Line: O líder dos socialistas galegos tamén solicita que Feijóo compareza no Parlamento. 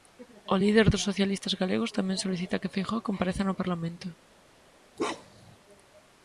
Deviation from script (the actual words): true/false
false